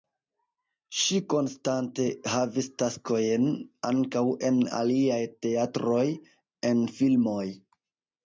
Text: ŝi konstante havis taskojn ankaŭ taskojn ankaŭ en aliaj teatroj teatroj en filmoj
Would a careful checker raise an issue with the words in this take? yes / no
yes